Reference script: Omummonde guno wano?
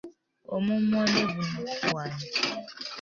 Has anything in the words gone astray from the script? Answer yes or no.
no